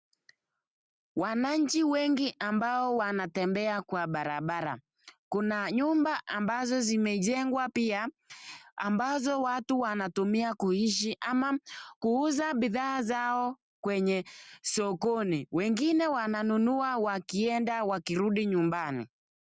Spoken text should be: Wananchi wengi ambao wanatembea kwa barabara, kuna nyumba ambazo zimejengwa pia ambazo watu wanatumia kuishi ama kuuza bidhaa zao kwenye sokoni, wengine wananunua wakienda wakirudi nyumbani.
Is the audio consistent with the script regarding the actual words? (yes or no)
yes